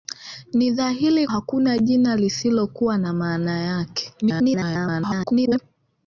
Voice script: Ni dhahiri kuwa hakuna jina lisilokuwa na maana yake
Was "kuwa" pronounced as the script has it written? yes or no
no